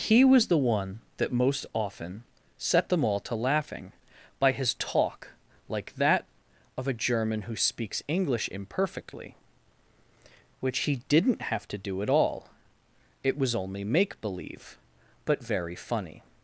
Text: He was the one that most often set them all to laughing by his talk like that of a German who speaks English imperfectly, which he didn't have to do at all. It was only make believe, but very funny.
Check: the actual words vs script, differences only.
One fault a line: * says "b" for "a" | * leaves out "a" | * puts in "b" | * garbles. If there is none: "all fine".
all fine